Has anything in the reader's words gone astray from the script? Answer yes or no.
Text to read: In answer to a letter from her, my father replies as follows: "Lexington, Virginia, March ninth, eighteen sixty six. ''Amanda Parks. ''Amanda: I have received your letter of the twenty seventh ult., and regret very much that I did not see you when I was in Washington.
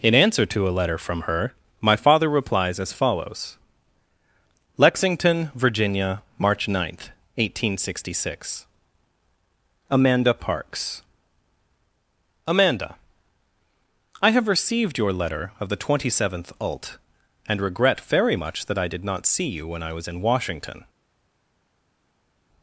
no